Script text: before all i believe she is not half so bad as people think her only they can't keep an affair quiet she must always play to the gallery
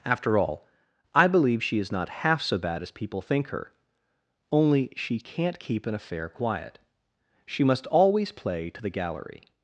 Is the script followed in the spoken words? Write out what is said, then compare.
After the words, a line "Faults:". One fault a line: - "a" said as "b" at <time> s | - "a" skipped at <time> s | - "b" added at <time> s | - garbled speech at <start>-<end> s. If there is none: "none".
after all i believe she is not half so bad as people think her only she can't keep an affair quiet she must always play to the gallery
Faults:
- "before" said as "after" at 0.1 s
- "they" said as "she" at 5.0 s